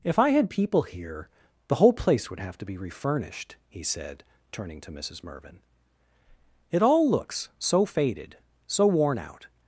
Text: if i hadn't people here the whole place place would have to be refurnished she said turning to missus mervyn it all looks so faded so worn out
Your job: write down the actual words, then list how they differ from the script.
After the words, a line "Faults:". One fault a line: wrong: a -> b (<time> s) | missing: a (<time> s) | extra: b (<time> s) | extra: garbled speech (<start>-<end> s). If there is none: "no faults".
if i had people here the whole place would have to be refurnished he said turning to missus mervyn it all looks so faded so worn out
Faults:
wrong: hadn't -> had (0.3 s)
missing: place (2.3 s)
wrong: she -> he (3.7 s)